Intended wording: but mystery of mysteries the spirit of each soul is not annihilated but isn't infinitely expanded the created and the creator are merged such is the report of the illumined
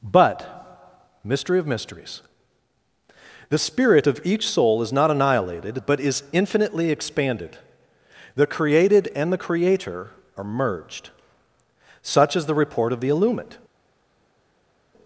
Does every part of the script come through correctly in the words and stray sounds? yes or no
no